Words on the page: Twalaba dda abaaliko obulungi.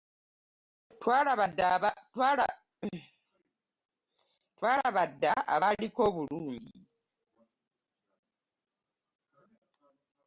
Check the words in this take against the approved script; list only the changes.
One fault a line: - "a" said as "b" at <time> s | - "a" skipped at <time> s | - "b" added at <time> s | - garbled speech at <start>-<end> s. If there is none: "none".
none